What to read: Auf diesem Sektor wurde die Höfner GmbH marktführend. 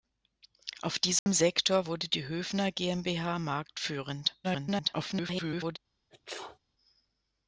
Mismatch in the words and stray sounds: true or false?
true